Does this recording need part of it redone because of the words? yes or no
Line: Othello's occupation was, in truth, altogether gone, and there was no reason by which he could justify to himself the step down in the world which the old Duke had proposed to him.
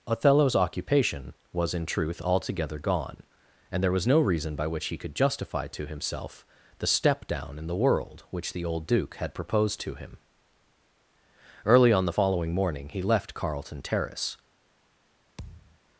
yes